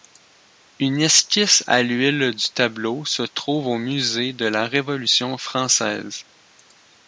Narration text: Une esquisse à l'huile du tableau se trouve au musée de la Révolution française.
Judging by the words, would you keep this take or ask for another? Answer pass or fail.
pass